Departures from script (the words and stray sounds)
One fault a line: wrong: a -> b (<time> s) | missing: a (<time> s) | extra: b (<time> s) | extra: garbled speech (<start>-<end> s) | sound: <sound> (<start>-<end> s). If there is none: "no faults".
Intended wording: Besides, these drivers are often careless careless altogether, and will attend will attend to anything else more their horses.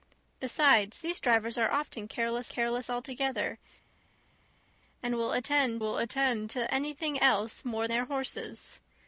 no faults